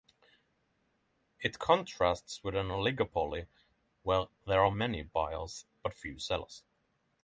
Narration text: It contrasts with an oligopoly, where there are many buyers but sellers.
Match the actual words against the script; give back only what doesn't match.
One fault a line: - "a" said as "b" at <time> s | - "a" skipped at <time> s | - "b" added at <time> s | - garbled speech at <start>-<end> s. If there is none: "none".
- "few" added at 5.9 s